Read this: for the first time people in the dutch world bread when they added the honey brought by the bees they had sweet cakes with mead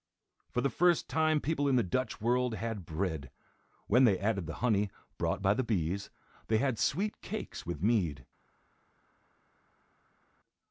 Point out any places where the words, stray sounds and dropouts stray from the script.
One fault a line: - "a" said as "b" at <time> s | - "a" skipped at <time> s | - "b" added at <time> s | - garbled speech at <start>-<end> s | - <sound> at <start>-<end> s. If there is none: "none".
- "had" added at 2.5 s